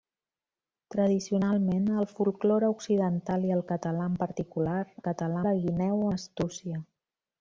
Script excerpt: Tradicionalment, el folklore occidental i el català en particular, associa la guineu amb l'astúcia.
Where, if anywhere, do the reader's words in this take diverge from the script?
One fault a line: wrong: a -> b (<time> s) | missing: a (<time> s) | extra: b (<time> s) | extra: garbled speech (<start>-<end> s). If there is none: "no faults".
wrong: associa -> català (5.1 s)
missing: amb (6.1 s)